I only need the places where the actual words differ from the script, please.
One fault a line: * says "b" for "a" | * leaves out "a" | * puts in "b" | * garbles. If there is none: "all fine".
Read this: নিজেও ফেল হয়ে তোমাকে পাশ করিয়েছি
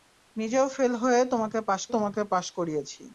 * puts in "তোমাকে পাশ"